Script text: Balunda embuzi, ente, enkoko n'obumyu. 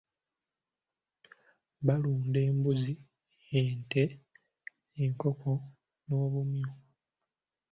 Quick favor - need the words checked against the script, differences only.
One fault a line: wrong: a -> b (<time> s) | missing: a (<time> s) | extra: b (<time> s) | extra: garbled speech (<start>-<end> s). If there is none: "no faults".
no faults